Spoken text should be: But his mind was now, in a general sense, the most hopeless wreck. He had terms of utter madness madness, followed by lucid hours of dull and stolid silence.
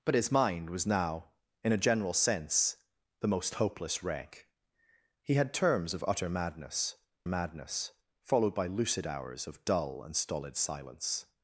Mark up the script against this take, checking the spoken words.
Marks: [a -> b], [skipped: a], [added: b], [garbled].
But his mind was now, in a general sense, the most hopeless wreck. He had terms of utter madness madness, followed by lucid hours of dull and stolid silence.